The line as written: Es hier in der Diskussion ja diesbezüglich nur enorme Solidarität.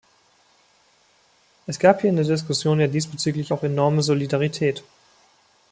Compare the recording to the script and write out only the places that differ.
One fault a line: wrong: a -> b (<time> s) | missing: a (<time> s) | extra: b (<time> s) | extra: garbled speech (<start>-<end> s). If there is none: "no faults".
extra: gab (1.8 s)
wrong: nur -> auch (3.5 s)